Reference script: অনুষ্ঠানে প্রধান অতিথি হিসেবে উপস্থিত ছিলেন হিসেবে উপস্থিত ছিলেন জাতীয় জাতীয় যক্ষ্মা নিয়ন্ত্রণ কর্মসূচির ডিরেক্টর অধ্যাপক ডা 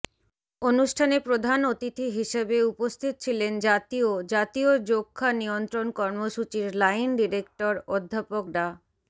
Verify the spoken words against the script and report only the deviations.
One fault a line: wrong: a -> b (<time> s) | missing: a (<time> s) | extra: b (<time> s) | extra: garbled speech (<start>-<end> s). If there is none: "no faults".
missing: হিসেবে উপস্থিত ছিলেন (3.5 s)
extra: লাইন (6.8 s)